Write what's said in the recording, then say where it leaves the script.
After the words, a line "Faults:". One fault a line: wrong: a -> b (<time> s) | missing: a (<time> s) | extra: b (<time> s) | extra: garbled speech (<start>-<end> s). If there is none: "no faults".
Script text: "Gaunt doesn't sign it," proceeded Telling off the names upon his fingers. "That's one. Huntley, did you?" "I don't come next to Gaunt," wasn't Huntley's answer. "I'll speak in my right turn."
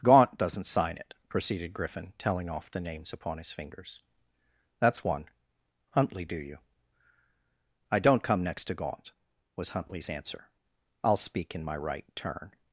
"Gaunt doesn't sign it," proceeded Griffin, telling off the names upon his fingers. "That's one. Huntley, do you?" "I don't come next to Gaunt," was Huntley's answer. "I'll speak in my right turn."
Faults:
extra: Griffin (1.7 s)
wrong: did -> do (6.2 s)
wrong: wasn't -> was (9.6 s)